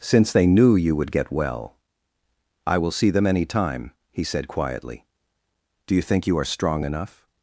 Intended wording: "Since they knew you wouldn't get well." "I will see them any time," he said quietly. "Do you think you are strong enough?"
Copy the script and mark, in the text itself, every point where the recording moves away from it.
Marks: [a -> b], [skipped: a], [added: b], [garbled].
"Since they knew you [wouldn't -> would] get well." "I will see them any time," he said quietly. "Do you think you are strong enough?"